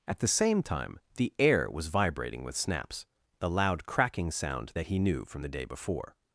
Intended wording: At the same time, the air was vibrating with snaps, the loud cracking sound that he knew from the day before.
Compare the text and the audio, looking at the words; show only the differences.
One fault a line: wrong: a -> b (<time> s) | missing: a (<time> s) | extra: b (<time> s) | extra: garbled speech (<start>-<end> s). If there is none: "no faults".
no faults